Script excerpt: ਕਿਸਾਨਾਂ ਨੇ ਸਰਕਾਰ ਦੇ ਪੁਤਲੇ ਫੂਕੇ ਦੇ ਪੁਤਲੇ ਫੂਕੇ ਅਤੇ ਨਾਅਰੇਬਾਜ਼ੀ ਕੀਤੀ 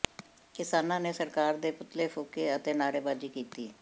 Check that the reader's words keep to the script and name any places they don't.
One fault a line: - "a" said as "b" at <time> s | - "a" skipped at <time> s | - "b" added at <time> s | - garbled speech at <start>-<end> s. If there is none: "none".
- "ਦੇ ਪੁਤਲੇ ਫੂਕੇ" skipped at 2.5 s